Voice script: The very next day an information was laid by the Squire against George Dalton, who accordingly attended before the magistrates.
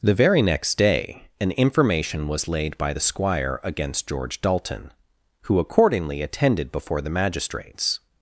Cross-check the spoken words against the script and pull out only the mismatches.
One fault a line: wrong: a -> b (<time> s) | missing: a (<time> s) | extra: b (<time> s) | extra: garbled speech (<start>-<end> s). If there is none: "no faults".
no faults